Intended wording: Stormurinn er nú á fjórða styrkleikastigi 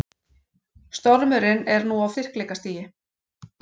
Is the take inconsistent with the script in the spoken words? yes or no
yes